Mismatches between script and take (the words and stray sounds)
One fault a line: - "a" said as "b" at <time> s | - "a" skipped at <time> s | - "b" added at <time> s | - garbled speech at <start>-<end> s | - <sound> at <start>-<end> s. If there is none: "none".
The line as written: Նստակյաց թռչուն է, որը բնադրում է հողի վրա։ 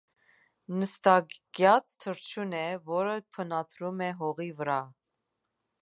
none